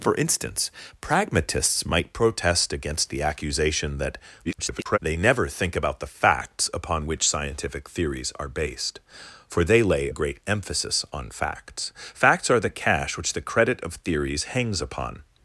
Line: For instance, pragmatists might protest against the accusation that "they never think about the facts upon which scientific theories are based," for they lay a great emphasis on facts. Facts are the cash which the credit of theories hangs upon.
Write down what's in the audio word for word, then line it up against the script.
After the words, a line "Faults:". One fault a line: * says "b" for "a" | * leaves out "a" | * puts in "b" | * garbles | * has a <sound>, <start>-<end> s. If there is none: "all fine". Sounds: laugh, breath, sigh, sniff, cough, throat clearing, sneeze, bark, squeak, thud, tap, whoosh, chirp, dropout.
For instance, pragmatists might protest against the accusation that [garbled] "they never think about the facts upon which scientific theories are based," for they lay great emphasis on facts. Facts are the cash which the credit of theories hangs upon.
Faults:
* garbles
* leaves out "a"